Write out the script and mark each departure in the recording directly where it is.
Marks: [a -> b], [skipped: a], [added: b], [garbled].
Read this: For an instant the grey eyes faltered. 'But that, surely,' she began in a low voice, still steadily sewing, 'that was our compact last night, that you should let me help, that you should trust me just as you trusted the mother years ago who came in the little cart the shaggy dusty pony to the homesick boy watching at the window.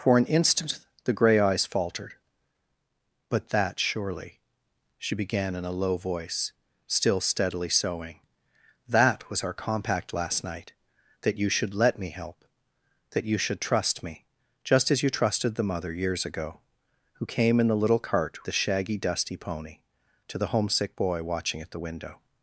For an instant the grey eyes faltered. 'But that, surely,' she began in a low voice, still steadily sewing, 'that was our compact last night, that you should let me help, that you should trust me just as you trusted the mother years ago who came in the little cart the shaggy dusty pony to the homesick boy watching at the window.